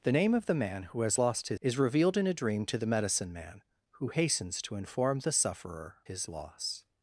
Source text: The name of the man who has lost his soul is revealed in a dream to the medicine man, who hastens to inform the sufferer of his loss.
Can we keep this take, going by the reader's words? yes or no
no